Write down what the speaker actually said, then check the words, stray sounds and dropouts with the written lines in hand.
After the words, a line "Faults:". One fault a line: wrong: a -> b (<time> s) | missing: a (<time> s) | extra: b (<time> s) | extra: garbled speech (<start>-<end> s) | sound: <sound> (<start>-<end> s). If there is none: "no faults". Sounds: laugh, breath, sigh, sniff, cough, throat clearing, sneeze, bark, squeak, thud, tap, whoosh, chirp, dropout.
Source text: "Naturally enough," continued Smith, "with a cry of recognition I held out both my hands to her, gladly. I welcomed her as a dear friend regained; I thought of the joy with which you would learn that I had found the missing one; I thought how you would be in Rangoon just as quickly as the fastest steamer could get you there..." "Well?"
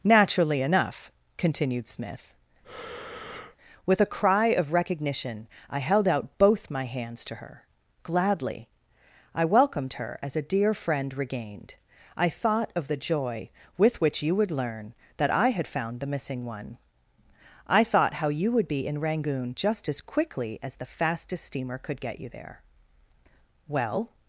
"Naturally enough," continued Smith, "with a cry of recognition I held out both my hands to her, gladly. I welcomed her as a dear friend regained; I thought of the joy with which you would learn that I had found the missing one; I thought how you would be in Rangoon just as quickly as the fastest steamer could get you there..." "Well?"
Faults:
sound: breath (2.6-3.6 s)